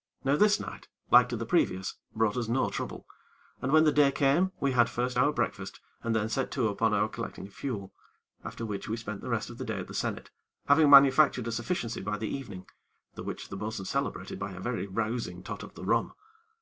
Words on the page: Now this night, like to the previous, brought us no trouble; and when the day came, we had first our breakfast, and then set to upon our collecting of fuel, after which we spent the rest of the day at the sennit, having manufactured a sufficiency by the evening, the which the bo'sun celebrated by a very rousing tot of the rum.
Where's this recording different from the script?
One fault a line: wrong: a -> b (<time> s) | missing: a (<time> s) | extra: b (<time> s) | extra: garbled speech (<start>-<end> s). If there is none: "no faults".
no faults